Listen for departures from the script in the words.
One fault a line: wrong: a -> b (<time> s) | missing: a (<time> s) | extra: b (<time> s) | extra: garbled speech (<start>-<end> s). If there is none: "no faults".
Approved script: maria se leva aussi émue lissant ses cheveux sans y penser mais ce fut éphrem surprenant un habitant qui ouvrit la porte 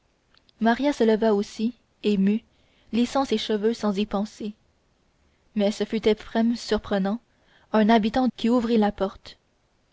no faults